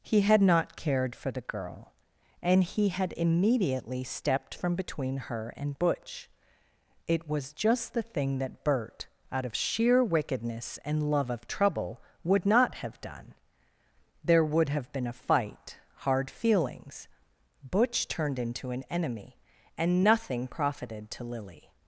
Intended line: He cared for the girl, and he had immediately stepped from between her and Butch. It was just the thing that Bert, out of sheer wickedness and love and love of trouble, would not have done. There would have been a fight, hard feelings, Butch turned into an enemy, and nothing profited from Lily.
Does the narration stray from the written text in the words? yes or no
yes